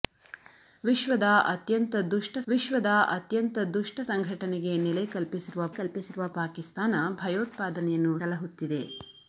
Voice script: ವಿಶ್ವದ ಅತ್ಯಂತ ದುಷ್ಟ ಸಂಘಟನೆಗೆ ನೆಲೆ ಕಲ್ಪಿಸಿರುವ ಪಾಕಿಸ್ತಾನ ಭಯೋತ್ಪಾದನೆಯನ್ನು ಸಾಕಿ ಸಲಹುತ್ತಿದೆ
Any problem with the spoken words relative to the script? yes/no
yes